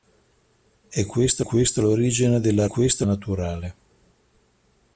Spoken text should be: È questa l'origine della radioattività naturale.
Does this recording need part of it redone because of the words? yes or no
yes